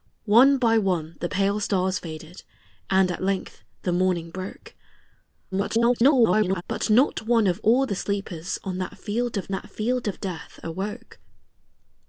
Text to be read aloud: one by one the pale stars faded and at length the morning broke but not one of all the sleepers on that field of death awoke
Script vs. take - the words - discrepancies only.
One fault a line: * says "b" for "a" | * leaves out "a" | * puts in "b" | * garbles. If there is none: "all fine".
* garbles
* puts in "that field of"